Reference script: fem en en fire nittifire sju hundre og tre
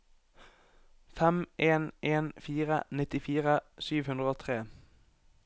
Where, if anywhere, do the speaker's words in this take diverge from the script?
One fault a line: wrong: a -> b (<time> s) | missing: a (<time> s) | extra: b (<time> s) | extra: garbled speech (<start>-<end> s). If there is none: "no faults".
no faults